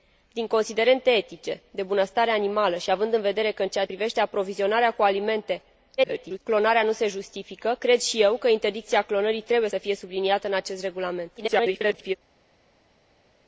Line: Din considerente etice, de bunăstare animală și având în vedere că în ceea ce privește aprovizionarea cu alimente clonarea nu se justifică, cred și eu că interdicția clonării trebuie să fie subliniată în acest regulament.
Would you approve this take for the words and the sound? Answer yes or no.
no